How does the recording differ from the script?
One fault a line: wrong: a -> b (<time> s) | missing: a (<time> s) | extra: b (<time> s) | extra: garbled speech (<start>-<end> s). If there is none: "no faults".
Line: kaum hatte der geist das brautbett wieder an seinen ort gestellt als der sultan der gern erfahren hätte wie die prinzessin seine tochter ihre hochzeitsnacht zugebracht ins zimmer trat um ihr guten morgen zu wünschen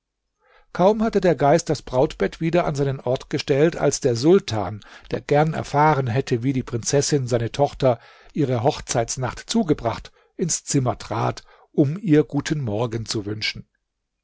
no faults